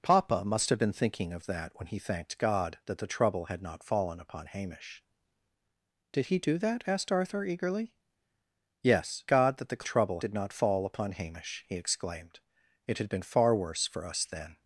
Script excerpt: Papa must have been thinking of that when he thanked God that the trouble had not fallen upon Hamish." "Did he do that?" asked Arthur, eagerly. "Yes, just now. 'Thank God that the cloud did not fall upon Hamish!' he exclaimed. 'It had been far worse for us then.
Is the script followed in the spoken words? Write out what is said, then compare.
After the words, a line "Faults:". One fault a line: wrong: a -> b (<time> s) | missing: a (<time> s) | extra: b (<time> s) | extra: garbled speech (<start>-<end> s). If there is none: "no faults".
Papa must have been thinking of that when he thanked God that the trouble had not fallen upon Hamish." "Did he do that?" asked Arthur, eagerly. "Yes, God that the trouble did not fall upon Hamish!' he exclaimed. 'It had been far worse for us then.
Faults:
missing: just now Thank (9.2 s)
wrong: cloud -> trouble (9.8 s)